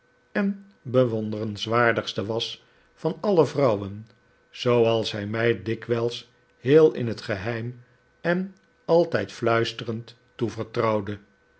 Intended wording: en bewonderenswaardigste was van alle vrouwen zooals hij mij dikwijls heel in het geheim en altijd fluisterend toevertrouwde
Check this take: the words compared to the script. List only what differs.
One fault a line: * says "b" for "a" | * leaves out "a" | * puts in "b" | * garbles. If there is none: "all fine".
all fine